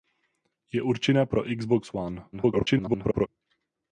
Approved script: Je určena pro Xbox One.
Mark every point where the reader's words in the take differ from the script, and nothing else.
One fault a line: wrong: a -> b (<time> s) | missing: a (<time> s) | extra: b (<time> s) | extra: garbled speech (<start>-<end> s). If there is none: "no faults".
extra: garbled speech (2.3-3.3 s)